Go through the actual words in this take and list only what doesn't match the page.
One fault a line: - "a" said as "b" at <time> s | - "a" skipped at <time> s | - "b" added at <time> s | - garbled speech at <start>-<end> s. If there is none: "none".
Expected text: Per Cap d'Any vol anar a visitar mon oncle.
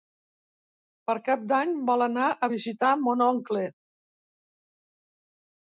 none